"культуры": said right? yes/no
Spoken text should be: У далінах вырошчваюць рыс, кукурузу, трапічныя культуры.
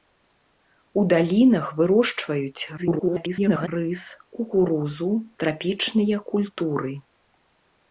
yes